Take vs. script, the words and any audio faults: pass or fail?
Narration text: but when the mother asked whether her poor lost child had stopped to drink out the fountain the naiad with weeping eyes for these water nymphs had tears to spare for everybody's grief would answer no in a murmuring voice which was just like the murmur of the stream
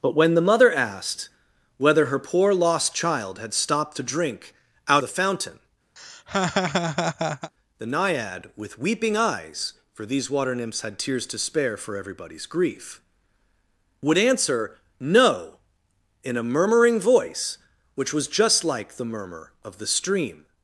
fail